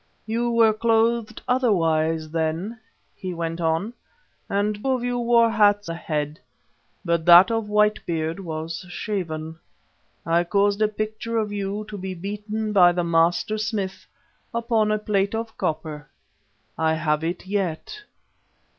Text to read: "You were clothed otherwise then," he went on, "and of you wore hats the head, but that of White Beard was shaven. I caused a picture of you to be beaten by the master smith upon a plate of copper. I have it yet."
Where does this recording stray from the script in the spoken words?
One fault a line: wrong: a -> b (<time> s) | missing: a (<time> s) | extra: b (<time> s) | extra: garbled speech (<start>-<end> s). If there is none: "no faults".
no faults